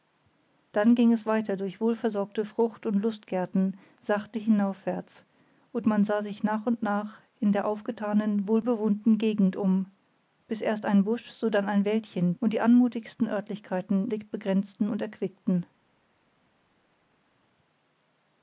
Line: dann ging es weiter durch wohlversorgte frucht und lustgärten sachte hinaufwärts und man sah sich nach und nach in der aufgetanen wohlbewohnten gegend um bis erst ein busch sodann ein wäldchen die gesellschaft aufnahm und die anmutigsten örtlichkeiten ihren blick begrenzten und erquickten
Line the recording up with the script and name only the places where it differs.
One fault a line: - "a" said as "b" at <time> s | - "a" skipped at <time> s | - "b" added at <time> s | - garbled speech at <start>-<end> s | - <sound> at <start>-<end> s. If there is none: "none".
- "die gesellschaft aufnahm" skipped at 12.3 s
- "ihren" skipped at 14.1 s